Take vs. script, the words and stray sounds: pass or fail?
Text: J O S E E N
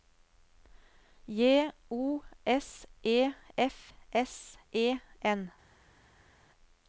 fail